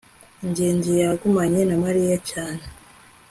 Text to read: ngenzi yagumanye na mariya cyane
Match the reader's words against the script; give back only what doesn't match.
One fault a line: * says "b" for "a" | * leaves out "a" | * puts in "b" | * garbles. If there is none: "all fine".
all fine